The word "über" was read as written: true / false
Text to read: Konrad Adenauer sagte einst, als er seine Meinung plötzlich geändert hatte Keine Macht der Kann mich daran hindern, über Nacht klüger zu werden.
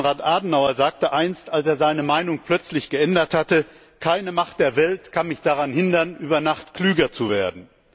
true